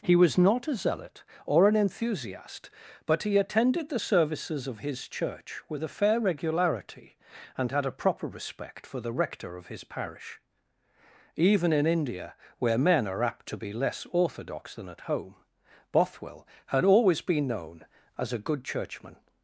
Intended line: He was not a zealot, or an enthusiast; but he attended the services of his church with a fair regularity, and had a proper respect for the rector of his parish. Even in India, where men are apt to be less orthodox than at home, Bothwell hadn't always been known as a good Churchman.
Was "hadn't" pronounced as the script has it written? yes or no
no